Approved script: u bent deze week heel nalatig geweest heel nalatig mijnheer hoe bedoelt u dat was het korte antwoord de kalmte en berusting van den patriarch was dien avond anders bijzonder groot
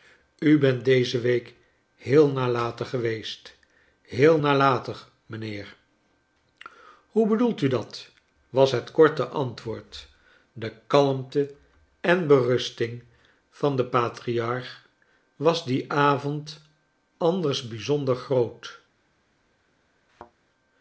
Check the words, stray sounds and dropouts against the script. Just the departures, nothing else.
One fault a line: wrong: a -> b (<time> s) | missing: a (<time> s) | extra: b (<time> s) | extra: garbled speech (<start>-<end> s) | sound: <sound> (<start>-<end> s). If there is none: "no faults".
sound: thud (20.1-20.3 s)